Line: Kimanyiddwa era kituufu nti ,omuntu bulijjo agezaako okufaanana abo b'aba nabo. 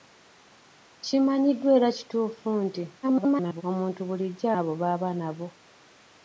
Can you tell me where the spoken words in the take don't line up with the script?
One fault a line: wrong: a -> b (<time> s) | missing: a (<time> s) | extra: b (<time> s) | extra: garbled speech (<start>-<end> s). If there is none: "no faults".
extra: garbled speech (3.0-3.6 s)
missing: agezaako okufaanana (4.5 s)